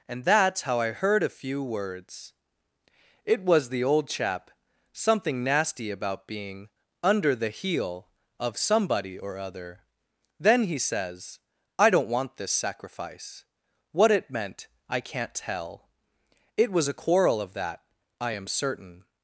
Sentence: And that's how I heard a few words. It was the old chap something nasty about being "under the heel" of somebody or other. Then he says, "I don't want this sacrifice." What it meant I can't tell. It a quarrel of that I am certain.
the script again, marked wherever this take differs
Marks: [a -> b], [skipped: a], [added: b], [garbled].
And that's how I heard a few words. It was the old chap something nasty about being "under the heel" of somebody or other. Then he says, "I don't want this sacrifice." What it meant I can't tell. It [added: was] a quarrel of that I am certain.